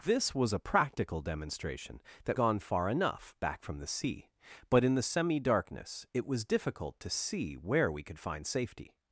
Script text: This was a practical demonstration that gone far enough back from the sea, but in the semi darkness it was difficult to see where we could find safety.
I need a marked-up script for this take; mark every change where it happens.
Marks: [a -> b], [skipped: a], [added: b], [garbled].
This was a practical demonstration that gone far enough back from the sea, but in the semi darkness it was difficult to see where we could find safety.